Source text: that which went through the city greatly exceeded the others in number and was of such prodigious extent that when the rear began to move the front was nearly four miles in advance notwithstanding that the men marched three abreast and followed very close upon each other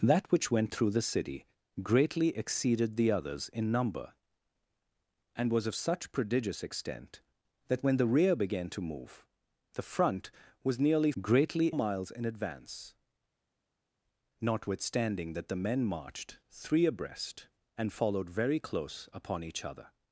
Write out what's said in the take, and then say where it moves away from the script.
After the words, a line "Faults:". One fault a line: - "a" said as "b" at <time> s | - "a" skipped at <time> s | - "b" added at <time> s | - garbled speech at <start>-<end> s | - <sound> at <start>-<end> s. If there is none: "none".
that which went through the city greatly exceeded the others in number and was of such prodigious extent that when the rear began to move the front was nearly greatly miles in advance notwithstanding that the men marched three abreast and followed very close upon each other
Faults:
- "four" said as "greatly" at 11.2 s